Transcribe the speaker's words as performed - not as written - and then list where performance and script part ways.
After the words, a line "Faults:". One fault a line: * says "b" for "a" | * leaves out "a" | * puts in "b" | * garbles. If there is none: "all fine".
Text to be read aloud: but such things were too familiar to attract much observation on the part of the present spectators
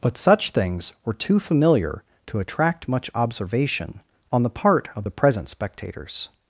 but such things were too familiar to attract much observation on the part of the present spectators
Faults:
all fine